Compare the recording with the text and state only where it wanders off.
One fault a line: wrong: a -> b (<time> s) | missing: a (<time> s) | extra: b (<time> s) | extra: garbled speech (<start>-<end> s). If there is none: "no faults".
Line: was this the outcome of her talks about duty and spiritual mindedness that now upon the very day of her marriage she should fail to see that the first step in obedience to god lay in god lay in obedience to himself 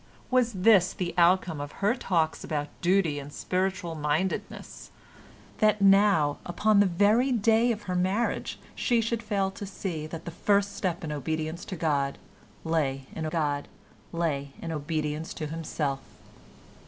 no faults